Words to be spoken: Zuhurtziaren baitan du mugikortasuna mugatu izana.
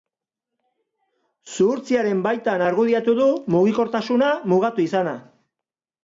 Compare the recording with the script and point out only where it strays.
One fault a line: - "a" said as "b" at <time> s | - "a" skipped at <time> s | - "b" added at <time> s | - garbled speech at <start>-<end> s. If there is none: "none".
- "argudiatu" added at 2.7 s